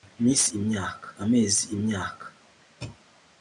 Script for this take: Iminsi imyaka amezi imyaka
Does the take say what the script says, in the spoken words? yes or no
yes